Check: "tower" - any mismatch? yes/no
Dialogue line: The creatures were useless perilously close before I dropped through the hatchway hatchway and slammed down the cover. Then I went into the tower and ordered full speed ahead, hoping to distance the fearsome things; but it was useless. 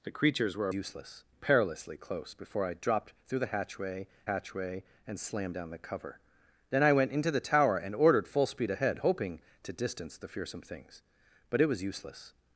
no